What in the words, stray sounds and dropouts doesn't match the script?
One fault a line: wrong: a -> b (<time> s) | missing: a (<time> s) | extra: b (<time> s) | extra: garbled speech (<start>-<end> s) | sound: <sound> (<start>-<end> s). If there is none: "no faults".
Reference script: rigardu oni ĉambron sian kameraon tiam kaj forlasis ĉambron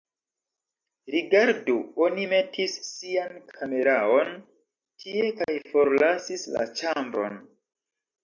wrong: ĉambron -> metis (2.3 s)
wrong: tiam -> tie (5.0 s)
extra: la (6.6 s)